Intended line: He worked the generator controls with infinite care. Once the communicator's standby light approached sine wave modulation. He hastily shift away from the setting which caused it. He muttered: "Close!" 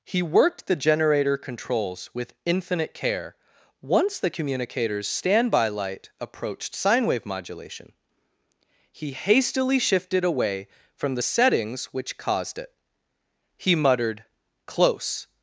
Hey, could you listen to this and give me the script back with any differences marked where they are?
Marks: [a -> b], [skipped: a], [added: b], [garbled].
He worked the generator controls with infinite care. Once the communicator's standby light approached sine wave modulation. He hastily [shift -> shifted] away from the [setting -> settings] which caused it. He muttered: "Close!"